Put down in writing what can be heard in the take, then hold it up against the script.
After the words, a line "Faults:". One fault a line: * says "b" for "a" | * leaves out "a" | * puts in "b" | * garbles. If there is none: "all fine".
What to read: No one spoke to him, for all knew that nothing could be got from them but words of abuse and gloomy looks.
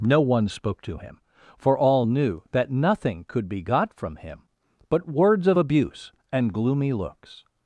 No one spoke to him, for all knew that nothing could be got from him but words of abuse and gloomy looks.
Faults:
* says "him" for "them"